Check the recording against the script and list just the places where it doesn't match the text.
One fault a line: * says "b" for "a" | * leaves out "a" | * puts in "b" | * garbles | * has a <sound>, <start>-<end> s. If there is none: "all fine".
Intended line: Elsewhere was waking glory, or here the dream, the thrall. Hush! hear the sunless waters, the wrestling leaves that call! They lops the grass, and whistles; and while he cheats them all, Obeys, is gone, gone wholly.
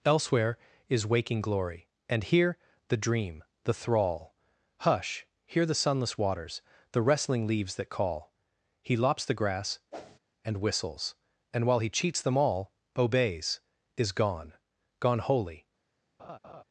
* says "is" for "was"
* says "and" for "or"
* says "He" for "They"
* has a whoosh, 9.9-10.2 s
* has a laugh, 16.2-16.6 s